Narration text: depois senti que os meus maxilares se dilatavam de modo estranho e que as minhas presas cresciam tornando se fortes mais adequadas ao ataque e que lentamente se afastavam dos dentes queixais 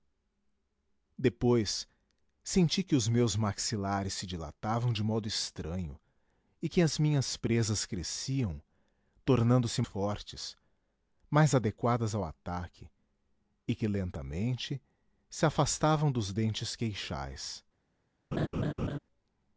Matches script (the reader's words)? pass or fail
pass